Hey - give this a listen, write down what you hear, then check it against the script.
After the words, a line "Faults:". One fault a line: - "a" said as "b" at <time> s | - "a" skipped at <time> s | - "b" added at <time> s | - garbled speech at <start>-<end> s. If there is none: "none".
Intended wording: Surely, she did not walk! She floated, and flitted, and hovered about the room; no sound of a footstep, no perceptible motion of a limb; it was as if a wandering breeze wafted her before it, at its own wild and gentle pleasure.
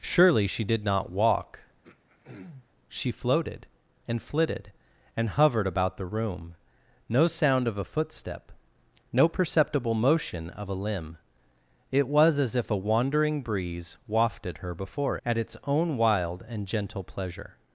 Surely, she did not walk! She floated, and flitted, and hovered about the room; no sound of a footstep, no perceptible motion of a limb; it was as if a wandering breeze wafted her before at its own wild and gentle pleasure.
Faults:
- "it" skipped at 15.2 s